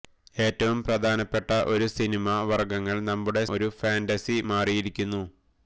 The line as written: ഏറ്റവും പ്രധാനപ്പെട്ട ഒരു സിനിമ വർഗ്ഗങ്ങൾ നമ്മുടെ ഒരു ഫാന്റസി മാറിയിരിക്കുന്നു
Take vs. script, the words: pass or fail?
pass